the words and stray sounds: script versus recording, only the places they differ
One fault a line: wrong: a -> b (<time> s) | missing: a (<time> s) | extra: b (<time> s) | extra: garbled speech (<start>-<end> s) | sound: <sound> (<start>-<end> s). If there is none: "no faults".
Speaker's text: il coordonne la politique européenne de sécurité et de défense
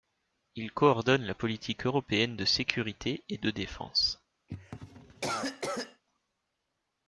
sound: cough (4.5-6.0 s)